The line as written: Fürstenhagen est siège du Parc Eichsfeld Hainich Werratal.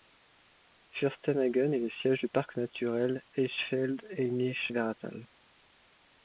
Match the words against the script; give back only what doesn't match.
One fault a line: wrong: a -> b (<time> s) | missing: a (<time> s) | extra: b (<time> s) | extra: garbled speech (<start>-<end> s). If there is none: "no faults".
extra: le (1.8 s)
extra: naturel (2.6 s)